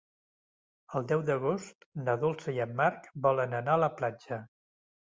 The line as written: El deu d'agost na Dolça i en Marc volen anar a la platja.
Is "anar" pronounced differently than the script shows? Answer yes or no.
no